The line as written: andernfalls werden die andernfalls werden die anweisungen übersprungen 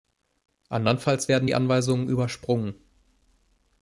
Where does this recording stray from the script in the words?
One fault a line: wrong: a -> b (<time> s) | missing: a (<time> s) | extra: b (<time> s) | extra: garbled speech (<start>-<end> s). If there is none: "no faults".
missing: andernfalls werden die (1.5 s)